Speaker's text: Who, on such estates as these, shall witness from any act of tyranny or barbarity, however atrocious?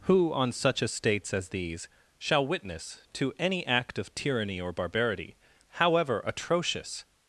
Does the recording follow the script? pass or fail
fail